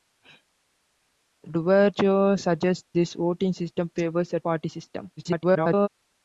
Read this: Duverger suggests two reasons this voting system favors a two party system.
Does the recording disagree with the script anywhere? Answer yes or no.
yes